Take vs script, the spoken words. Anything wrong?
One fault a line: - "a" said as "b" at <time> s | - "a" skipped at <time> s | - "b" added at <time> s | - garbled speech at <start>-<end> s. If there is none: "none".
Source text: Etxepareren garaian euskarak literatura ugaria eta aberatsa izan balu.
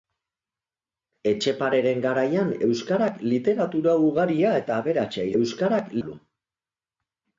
- "izan" said as "euskarak" at 5.4 s